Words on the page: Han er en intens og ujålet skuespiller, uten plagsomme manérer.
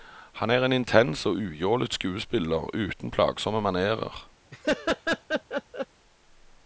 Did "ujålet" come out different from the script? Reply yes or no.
no